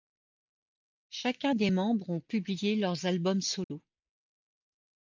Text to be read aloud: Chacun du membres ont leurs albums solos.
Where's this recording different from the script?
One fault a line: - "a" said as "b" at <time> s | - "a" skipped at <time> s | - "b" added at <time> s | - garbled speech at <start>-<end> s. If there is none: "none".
- "du" said as "des" at 1.5 s
- "publié" added at 2.2 s